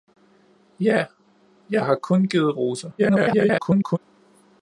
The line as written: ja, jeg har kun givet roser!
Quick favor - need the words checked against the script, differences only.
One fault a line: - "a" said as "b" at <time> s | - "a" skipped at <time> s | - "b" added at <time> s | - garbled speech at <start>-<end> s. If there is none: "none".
- garbled speech at 3.0-4.0 s